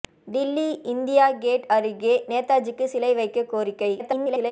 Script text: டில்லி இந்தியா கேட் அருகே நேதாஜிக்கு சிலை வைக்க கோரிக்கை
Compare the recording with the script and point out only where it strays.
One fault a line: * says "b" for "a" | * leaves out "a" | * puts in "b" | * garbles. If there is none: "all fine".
* garbles